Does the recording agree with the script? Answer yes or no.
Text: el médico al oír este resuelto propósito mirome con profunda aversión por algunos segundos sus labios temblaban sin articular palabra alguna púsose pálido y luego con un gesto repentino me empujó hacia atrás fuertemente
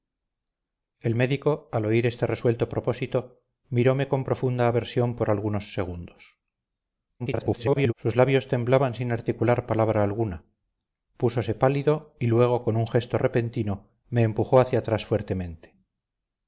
no